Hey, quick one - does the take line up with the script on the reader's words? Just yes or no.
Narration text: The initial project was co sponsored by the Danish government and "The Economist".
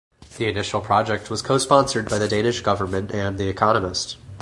yes